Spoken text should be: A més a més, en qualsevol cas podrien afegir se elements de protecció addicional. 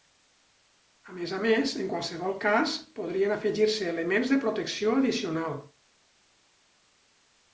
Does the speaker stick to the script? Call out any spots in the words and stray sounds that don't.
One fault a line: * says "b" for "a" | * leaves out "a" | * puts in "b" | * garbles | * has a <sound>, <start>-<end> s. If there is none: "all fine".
all fine